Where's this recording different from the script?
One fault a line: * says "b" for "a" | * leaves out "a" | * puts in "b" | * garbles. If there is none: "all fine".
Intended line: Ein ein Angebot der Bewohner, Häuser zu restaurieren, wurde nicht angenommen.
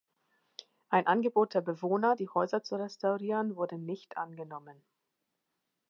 * leaves out "ein"
* puts in "die"